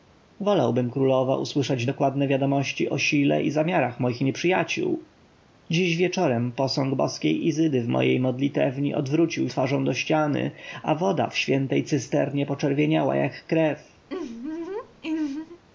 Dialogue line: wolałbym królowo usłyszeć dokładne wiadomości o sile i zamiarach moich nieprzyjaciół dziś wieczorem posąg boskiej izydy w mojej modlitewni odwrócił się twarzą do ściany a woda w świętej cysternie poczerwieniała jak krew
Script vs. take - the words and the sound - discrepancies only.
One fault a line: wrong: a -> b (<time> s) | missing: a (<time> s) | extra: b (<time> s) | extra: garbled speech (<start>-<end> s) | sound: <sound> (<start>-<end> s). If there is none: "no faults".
missing: się (9.5 s)
sound: laugh (14.1-15.6 s)